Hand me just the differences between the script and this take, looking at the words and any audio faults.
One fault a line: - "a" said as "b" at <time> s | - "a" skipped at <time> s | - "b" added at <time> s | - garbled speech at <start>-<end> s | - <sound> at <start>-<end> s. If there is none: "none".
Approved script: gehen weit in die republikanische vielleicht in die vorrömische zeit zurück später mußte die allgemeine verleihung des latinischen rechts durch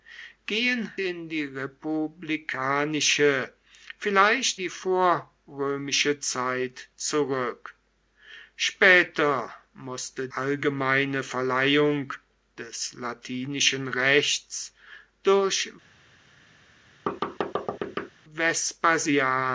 - "weit" skipped at 0.9 s
- "in" skipped at 4.6 s
- "die" skipped at 10.3 s
- thud at 17.1-18.1 s